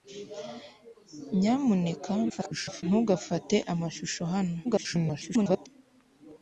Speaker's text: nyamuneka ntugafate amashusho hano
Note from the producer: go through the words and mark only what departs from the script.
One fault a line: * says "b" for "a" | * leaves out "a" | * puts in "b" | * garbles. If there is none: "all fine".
* garbles
* garbles